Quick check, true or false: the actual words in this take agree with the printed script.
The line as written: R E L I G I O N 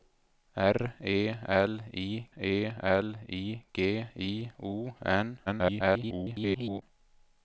false